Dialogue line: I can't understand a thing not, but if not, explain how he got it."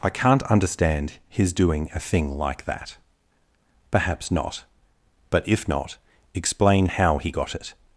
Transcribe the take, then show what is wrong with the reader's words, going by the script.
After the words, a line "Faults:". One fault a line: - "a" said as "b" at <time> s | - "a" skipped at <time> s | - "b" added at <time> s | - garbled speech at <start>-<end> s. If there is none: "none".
I can't understand his doing a thing like that." "Perhaps not, but if not, explain how he got it."
Faults:
- "his doing" added at 1.3 s
- "like that Perhaps" added at 2.4 s